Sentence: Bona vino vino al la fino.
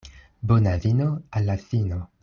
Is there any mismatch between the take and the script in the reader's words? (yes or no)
yes